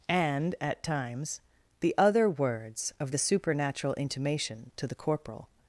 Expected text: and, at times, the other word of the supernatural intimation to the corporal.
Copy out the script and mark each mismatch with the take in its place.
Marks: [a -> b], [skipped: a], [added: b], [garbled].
and, at times, the other [word -> words] of the supernatural intimation to the corporal.